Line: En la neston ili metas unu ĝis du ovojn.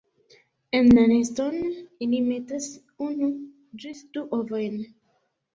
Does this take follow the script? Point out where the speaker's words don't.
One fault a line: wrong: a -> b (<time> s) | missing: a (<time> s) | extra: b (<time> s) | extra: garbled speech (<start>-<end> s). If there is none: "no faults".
no faults